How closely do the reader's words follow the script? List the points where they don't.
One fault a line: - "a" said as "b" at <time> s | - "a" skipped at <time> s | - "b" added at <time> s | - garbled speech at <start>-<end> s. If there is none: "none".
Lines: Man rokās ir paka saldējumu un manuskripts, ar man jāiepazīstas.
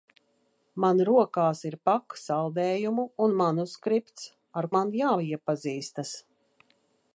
none